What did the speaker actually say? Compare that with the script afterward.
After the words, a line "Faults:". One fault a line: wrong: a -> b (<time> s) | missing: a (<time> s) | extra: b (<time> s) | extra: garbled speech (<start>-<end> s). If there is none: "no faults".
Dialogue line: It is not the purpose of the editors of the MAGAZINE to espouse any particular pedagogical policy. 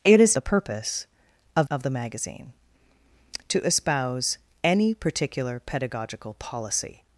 It is the purpose of of the MAGAZINE to espouse any particular pedagogical policy.
Faults:
missing: not (0.3 s)
missing: the editors (1.7 s)